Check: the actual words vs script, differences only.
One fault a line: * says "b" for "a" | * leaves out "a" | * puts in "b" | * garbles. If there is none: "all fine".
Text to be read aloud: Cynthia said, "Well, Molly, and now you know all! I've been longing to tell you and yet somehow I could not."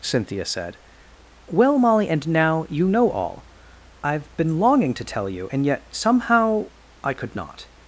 all fine